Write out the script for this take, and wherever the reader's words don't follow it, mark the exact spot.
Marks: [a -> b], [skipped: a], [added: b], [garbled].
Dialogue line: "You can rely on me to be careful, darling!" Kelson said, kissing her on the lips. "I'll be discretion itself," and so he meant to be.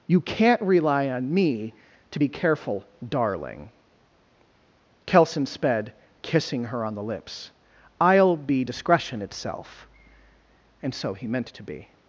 "You [can -> can't] rely on me to be careful, darling!" Kelson [said, -> sped] kissing her on the lips. "I'll be discretion itself," and so he meant to be.